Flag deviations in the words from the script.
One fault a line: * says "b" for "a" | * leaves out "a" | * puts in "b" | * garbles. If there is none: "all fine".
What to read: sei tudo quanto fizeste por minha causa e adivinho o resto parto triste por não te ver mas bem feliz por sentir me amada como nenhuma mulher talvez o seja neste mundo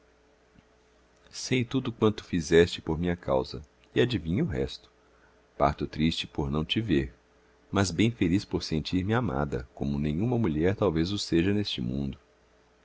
all fine